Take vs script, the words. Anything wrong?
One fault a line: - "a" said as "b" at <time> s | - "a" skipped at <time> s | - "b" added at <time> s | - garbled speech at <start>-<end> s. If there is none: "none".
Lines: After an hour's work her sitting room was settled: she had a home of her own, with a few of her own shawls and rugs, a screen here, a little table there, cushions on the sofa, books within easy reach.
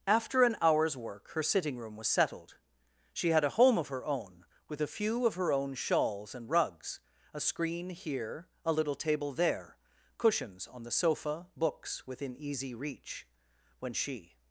- "When she" added at 13.8 s